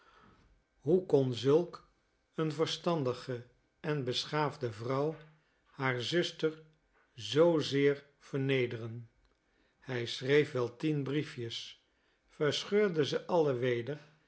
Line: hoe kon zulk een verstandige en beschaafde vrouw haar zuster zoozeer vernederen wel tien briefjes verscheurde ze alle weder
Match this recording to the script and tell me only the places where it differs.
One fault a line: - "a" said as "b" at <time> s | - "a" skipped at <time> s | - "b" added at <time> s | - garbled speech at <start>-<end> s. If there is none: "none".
- "hij schreef" added at 9.8 s